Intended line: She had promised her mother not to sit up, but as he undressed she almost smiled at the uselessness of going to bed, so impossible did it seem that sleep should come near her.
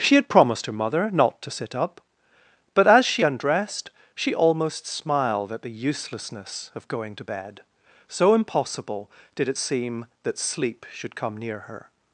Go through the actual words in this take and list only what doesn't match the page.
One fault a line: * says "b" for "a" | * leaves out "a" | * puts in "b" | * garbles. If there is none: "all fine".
* says "she" for "he"